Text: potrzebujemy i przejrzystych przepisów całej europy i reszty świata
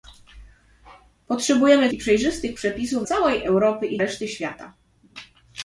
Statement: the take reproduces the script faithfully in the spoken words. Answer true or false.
true